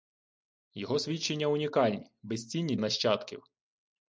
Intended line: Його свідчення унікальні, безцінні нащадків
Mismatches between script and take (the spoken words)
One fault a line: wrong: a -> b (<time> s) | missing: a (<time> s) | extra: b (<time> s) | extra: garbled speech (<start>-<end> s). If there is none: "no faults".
no faults